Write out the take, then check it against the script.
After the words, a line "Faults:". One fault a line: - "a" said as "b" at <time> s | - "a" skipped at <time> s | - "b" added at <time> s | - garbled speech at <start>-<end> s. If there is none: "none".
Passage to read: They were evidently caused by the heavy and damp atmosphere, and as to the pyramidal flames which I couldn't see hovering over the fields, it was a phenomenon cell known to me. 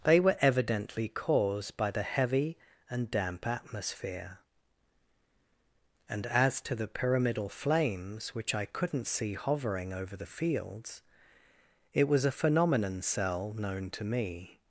They were evidently caused by the heavy and damp atmosphere, and as to the pyramidal flames which I couldn't see hovering over the fields, it was a phenomenon cell known to me.
Faults:
none